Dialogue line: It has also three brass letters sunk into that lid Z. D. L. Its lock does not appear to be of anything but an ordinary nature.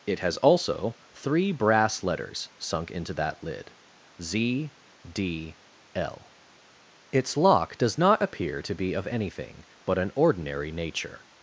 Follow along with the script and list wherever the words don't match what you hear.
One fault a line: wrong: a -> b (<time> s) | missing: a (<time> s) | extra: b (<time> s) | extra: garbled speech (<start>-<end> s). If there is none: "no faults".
no faults